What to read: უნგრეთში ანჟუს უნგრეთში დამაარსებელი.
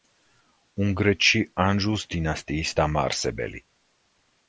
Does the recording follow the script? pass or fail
fail